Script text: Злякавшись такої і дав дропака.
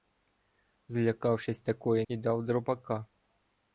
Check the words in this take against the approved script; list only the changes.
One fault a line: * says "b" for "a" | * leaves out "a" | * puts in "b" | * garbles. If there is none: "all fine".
all fine